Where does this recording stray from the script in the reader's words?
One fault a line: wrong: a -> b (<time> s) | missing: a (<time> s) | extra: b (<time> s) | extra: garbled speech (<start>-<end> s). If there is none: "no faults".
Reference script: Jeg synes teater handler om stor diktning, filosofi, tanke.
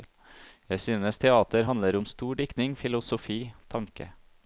no faults